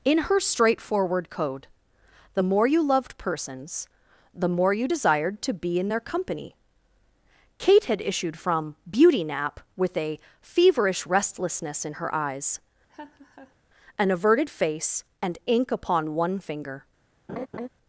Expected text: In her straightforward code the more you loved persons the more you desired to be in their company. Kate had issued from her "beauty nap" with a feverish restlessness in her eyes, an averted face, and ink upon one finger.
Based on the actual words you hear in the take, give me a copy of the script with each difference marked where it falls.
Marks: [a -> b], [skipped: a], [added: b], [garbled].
In her straightforward code the more you loved persons the more you desired to be in their company. Kate had issued from [skipped: her] "beauty nap" with a feverish restlessness in her eyes, an averted face, and ink upon one finger.